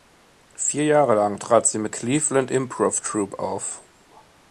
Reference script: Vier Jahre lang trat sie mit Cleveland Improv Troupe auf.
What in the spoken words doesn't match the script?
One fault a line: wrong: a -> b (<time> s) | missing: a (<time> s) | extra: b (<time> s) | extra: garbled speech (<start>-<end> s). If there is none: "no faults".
no faults